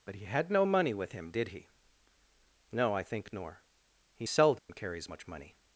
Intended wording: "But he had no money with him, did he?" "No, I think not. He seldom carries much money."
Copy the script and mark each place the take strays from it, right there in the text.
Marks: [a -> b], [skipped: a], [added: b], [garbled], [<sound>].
"But he had no money with him, did he?" "No, I think [not. -> nor] He seldom [dropout] carries much money."